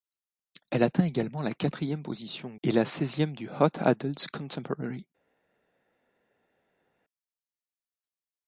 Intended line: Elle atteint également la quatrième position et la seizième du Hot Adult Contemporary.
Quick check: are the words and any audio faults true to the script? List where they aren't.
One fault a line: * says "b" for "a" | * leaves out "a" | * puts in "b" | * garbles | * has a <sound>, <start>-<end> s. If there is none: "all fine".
all fine